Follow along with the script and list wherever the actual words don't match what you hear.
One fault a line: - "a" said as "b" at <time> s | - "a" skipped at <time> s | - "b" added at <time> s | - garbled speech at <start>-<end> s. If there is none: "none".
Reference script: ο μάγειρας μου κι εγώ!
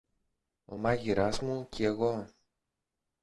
none